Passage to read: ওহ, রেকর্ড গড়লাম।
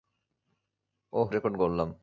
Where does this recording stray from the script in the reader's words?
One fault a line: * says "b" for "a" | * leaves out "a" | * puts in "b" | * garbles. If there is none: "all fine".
all fine